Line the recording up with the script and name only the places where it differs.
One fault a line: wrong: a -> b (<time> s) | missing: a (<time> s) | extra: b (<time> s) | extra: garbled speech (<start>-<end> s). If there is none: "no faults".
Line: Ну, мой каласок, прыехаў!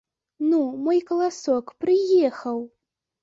no faults